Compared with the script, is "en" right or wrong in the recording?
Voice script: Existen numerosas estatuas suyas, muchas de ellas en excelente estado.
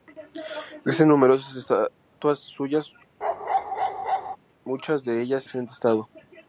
wrong